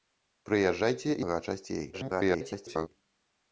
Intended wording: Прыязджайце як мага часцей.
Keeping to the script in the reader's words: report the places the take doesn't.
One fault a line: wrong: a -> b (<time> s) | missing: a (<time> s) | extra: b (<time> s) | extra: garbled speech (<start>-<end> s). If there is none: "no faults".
missing: як (1.1 s)
extra: garbled speech (1.9-2.9 s)